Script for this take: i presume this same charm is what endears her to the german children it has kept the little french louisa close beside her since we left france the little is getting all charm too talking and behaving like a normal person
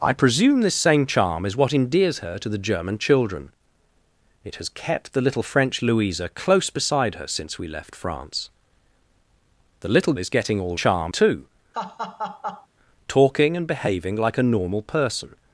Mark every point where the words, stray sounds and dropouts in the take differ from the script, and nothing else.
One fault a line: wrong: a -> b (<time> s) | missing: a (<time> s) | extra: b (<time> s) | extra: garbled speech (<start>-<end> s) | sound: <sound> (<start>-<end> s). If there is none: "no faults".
sound: laugh (11.7-12.7 s)